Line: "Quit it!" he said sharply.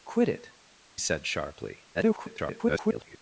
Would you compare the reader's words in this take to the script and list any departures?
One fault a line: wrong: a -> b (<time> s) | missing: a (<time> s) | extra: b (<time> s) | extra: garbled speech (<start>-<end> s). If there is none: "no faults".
missing: he (0.5 s)
extra: garbled speech (1.9-3.2 s)